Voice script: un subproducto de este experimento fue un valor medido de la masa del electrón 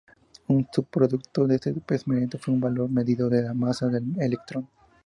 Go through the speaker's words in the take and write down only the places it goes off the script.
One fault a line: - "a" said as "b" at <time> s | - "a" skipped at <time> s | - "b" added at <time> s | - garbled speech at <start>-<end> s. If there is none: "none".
none